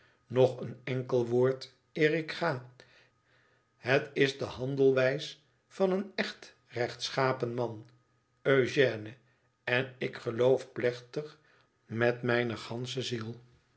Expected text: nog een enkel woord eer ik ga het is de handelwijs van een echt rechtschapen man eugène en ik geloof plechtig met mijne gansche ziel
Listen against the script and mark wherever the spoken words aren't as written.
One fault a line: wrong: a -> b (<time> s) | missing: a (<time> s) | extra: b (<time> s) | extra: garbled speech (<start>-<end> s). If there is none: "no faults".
no faults